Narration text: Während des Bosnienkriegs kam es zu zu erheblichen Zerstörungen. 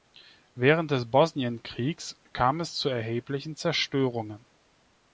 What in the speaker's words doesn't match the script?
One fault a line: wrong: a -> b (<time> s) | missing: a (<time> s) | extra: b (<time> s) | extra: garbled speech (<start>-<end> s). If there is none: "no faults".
missing: zu (2.9 s)